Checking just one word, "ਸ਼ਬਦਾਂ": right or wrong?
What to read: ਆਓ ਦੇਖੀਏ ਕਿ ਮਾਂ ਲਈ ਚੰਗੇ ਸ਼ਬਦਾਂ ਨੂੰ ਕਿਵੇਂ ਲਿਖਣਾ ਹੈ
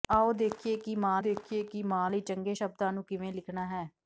right